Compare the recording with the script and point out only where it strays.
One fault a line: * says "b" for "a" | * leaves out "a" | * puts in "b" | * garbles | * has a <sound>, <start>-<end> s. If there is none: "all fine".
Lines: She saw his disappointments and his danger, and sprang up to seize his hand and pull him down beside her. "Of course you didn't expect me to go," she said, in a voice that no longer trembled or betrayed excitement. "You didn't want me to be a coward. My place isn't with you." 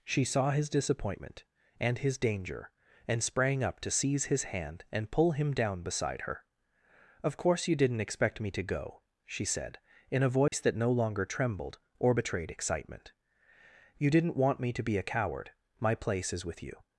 * says "disappointment" for "disappointments"
* has a dropout, 10.5-10.5 s
* says "is" for "isn't"